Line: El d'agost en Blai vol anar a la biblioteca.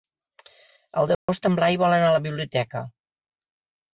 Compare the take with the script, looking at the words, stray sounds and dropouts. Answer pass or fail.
fail